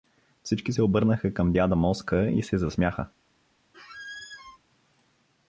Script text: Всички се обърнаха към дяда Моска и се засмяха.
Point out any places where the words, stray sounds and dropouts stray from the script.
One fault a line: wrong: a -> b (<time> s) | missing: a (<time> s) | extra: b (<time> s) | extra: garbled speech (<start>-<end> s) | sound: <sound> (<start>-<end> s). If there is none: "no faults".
sound: squeak (3.7-4.6 s)